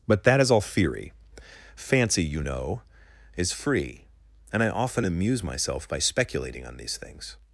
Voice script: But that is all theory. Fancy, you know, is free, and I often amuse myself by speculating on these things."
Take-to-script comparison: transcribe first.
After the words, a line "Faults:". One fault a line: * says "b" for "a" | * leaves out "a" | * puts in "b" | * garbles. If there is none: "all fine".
But that is all theory. Fancy, you know, is free, and I often amuse myself by speculating on these things."
Faults:
all fine